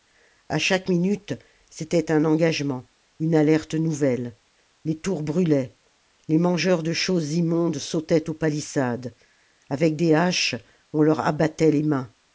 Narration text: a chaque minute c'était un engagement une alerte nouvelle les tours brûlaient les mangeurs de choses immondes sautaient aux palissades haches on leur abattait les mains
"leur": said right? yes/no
yes